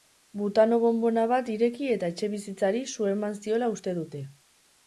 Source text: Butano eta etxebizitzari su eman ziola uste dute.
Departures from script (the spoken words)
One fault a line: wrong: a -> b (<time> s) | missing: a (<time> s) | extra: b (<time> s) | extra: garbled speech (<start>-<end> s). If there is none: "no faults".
extra: bonbona bat ireki (0.8 s)